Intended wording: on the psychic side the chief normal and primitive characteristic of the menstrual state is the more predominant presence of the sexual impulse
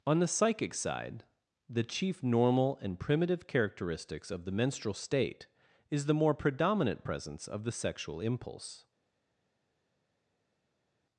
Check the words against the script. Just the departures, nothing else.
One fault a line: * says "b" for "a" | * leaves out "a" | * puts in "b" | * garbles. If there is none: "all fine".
* says "characteristics" for "characteristic"